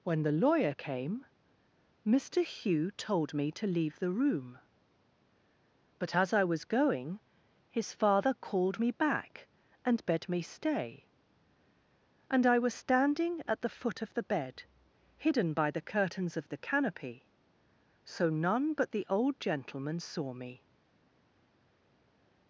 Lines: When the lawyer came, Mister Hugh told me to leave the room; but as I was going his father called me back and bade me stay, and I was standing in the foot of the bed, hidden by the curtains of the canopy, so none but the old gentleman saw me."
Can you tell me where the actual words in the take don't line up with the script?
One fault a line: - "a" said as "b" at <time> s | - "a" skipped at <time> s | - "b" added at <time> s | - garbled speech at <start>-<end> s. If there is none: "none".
- "in" said as "at" at 13.5 s